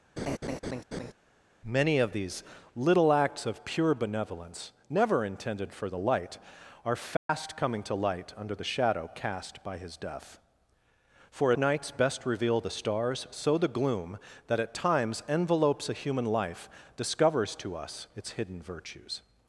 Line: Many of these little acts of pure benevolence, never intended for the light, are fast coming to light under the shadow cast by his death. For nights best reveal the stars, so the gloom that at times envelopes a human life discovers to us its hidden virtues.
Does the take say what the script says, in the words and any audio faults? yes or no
no